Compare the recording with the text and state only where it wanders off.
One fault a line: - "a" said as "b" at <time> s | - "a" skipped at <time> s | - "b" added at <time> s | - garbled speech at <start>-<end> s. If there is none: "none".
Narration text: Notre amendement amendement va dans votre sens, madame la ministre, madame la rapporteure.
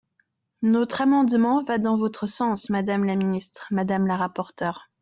- "amendement" skipped at 1.6 s